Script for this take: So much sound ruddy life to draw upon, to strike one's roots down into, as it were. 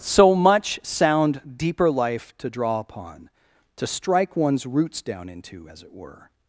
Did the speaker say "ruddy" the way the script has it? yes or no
no